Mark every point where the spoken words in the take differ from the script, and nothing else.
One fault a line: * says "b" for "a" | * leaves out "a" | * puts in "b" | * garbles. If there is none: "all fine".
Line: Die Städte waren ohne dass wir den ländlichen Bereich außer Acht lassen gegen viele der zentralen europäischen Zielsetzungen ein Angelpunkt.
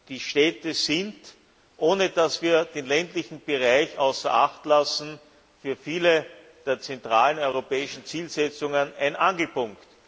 * says "sind" for "waren"
* says "für" for "gegen"